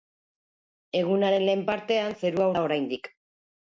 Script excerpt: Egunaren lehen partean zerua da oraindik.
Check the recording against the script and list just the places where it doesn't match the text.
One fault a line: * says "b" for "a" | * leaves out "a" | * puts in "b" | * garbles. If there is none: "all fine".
all fine